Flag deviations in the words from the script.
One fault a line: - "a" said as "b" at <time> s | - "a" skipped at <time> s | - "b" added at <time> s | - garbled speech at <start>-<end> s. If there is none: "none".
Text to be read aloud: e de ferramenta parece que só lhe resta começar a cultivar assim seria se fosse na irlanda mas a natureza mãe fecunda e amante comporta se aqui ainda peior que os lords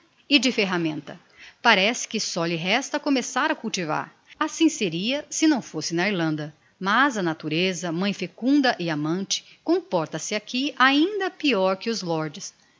- "não" added at 5.5 s